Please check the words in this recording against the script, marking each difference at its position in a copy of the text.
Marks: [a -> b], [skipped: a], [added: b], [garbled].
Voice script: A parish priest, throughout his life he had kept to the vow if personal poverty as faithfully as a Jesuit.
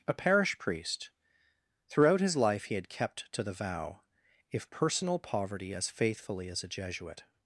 A parish priest, throughout his life he had kept to the vow if personal poverty as faithfully as a Jesuit.